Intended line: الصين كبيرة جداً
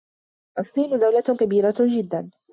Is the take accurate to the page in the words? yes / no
no